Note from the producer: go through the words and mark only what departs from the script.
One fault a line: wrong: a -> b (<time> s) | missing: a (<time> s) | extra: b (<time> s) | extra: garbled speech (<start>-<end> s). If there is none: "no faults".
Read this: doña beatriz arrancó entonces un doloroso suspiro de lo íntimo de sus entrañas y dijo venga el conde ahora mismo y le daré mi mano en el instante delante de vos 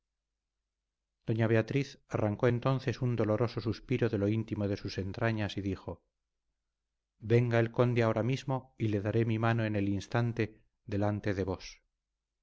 no faults